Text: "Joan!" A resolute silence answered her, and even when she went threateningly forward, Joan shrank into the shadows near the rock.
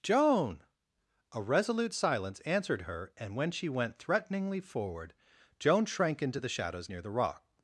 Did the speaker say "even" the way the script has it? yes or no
no